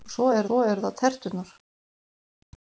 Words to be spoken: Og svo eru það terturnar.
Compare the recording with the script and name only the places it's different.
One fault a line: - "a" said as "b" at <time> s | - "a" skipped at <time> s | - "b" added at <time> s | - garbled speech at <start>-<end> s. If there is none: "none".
- "svo eru" added at 0.4 s